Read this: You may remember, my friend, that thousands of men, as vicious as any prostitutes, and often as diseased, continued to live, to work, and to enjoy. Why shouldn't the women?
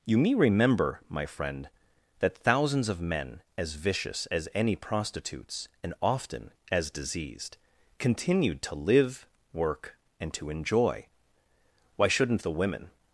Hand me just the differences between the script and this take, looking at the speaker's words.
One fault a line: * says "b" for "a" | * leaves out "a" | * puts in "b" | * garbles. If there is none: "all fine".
* leaves out "to"